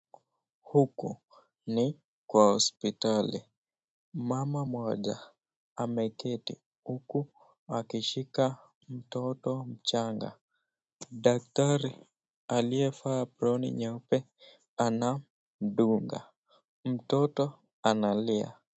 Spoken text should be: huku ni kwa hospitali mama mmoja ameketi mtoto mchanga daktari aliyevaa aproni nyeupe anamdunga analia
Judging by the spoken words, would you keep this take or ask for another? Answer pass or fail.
fail